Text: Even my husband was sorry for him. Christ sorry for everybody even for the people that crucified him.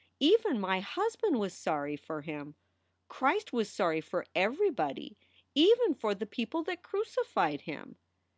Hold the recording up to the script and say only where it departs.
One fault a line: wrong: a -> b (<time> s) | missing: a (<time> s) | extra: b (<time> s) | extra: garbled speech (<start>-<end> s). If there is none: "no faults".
extra: was (3.5 s)